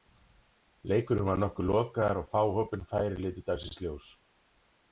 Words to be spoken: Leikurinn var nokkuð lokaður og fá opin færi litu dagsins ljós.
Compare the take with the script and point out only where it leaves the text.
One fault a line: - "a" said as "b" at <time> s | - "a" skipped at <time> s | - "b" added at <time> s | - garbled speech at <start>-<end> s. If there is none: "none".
none